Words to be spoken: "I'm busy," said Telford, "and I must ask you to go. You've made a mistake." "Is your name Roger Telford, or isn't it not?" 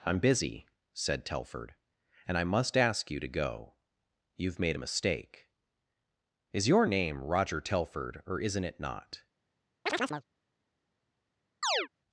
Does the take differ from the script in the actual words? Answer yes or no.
no